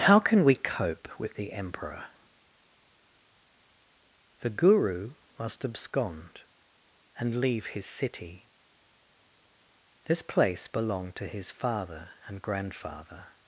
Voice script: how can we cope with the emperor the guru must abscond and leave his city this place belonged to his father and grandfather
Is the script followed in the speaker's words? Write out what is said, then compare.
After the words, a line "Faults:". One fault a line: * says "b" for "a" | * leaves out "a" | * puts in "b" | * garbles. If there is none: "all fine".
how can we cope with the emperor the guru must abscond and leave his city this place belonged to his father and grandfather
Faults:
all fine